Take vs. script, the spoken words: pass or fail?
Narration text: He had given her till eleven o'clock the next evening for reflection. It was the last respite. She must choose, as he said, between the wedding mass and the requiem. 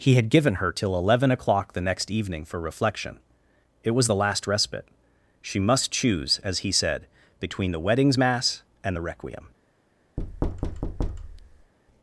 fail